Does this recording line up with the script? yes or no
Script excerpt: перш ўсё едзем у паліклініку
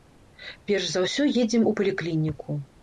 no